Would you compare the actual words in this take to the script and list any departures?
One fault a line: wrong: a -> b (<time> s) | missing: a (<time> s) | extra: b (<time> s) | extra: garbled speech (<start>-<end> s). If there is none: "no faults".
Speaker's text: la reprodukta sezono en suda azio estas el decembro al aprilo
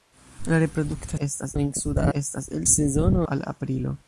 wrong: sezono -> estas (1.2 s)
missing: azio (2.1 s)
wrong: decembro -> sezono (2.7 s)